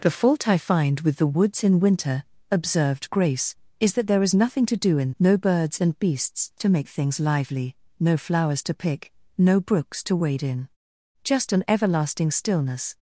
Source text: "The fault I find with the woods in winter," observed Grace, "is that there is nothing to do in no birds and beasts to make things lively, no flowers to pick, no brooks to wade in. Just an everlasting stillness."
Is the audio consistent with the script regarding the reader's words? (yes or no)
yes